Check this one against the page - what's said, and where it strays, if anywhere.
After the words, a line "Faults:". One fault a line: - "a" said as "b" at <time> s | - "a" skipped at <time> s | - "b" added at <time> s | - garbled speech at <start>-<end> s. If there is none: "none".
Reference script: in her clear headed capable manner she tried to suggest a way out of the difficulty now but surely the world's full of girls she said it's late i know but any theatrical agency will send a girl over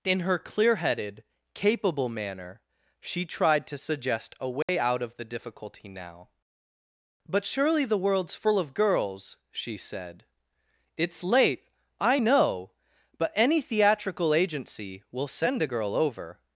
in her clear headed capable manner she tried to suggest a way out of the difficulty now but surely the world's full of girls she said it's late i know but any theatrical agency will send a girl over
Faults:
none